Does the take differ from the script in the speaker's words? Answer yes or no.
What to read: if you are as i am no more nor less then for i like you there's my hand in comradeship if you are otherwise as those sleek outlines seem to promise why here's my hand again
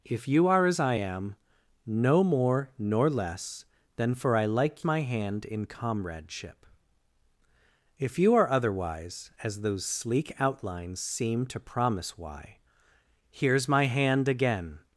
yes